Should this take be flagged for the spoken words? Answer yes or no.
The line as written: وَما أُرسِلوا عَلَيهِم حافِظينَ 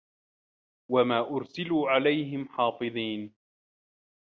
no